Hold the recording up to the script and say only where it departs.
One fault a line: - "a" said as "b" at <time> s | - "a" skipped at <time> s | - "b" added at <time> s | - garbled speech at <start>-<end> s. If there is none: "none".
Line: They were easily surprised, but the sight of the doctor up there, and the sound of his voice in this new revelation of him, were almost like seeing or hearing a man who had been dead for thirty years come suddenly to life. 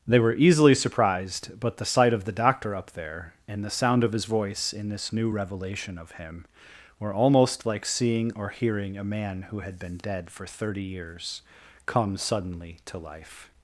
none